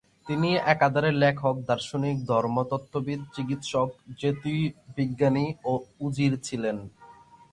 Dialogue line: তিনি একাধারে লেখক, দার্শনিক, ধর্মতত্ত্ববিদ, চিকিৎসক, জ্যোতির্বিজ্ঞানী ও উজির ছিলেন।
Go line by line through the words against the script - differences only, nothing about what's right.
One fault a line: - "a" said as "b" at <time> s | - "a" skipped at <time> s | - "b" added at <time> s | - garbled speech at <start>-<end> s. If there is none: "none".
none